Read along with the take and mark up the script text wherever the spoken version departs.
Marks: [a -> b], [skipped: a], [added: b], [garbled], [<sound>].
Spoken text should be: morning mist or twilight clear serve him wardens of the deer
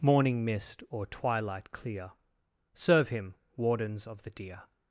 morning mist or twilight clear serve him wardens of the deer